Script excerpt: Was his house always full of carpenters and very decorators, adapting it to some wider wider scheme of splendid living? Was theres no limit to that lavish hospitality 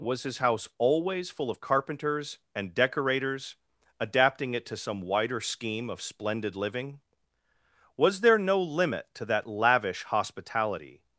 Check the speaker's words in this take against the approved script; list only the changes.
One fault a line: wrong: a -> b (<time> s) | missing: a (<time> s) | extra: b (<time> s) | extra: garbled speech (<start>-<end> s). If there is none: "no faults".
missing: very (2.7 s)
missing: wider (5.4 s)
wrong: theres -> there (8.2 s)